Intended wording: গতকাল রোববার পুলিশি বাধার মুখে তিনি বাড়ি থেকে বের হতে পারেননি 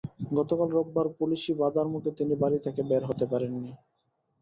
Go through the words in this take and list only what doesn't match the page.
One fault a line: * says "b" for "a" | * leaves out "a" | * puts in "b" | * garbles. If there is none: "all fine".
all fine